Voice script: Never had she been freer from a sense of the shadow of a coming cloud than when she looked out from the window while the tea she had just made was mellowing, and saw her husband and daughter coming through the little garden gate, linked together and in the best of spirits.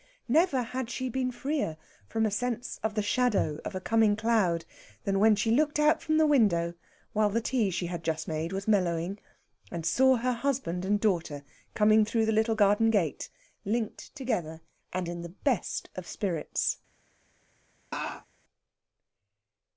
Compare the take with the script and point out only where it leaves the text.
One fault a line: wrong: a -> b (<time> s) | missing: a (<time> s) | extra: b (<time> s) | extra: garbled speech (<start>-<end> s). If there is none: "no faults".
no faults